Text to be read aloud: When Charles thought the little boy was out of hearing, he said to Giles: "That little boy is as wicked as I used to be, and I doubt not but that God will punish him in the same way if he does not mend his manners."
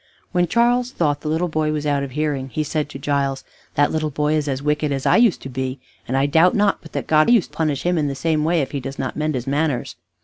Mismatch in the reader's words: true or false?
true